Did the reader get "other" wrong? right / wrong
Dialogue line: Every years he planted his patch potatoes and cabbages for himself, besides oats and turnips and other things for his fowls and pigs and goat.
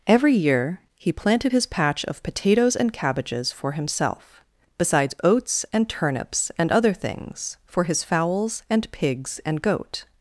right